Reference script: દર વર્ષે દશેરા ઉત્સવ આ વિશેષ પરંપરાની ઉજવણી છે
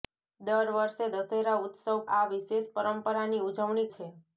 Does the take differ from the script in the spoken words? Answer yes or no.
no